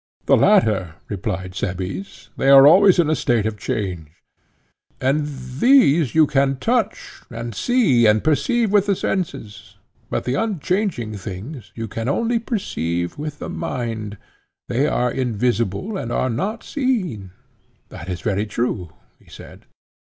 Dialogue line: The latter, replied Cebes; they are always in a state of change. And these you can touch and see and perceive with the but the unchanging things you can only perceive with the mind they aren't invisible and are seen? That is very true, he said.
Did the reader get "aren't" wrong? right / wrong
wrong